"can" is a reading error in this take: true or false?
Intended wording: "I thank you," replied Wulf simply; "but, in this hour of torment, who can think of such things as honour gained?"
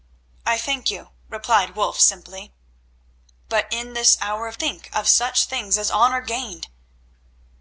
true